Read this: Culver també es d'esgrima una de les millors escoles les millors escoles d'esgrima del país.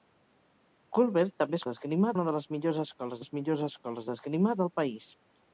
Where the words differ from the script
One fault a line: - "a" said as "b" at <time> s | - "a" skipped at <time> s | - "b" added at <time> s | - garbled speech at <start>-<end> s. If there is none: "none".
none